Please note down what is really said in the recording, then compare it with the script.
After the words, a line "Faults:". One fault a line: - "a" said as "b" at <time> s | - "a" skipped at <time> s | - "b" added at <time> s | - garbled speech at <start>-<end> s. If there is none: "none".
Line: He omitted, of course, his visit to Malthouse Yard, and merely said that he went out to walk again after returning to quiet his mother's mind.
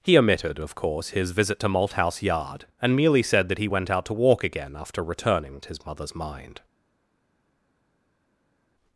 He omitted, of course, his visit to Malthouse Yard, and merely said that he went out to walk again after returning his mother's mind.
Faults:
- "to quiet" skipped at 5.6 s